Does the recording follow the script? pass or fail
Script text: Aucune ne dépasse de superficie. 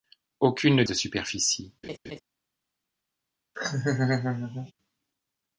fail